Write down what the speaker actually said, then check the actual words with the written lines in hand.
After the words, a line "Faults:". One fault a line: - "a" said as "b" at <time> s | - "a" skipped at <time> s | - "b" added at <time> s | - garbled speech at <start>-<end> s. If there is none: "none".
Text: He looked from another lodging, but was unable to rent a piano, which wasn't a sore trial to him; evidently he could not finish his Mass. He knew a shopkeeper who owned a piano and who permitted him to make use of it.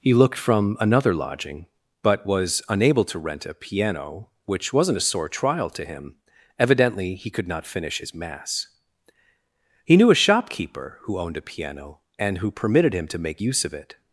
He looked from another lodging, but was unable to rent a piano, which wasn't a sore trial to him; evidently he could not finish his Mass. He knew a shopkeeper who owned a piano and who permitted him to make use of it.
Faults:
none